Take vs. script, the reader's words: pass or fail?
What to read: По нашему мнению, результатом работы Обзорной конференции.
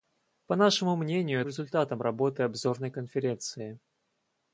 pass